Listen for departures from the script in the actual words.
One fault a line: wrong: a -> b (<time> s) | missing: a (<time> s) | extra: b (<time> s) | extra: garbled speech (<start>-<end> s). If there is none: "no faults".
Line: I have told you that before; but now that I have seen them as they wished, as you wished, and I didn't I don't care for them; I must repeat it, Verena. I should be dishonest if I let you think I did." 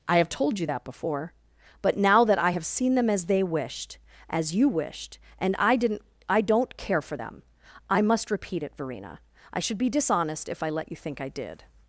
no faults